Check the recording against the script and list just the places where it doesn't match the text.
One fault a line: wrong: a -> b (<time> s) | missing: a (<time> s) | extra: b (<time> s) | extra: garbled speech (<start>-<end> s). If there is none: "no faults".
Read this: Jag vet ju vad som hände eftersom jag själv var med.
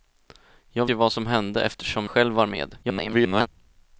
missing: vet (0.8 s)
missing: jag (2.1 s)
extra: garbled speech (2.8-3.5 s)